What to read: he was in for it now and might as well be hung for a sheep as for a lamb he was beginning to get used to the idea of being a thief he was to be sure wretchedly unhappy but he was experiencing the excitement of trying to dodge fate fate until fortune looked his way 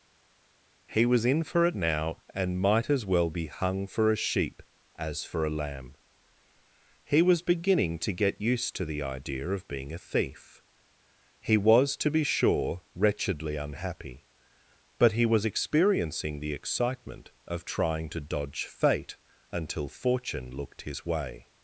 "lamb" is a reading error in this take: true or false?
false